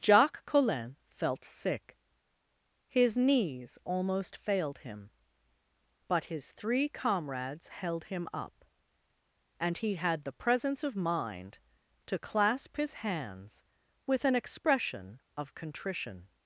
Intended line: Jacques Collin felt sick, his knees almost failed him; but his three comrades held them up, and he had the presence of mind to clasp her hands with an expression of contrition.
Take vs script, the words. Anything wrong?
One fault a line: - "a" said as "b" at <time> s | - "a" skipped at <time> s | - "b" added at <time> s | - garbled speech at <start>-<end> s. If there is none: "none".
- "them" said as "him" at 8.1 s
- "her" said as "his" at 12.8 s